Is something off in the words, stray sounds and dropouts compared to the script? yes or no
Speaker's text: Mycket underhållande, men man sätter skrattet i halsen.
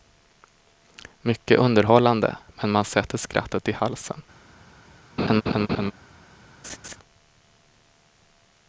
yes